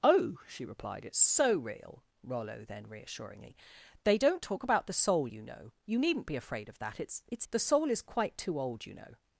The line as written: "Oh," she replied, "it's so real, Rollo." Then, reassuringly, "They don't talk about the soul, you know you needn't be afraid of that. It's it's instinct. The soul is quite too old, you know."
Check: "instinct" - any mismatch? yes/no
yes